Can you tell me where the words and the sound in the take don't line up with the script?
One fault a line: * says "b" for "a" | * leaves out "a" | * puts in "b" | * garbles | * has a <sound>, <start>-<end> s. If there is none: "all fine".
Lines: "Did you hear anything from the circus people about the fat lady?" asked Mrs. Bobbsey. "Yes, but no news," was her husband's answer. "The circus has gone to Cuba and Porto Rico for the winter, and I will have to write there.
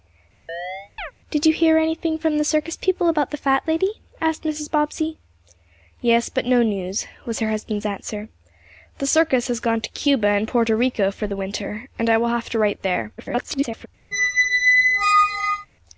* has a chirp, 0.5-1.1 s
* garbles
* has a squeak, 14.1-15.7 s